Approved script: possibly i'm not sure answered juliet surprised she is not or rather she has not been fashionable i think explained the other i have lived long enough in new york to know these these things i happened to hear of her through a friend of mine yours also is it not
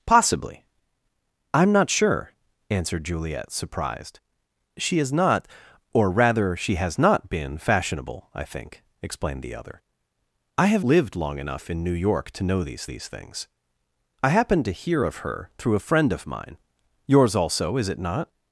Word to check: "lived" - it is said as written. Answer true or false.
true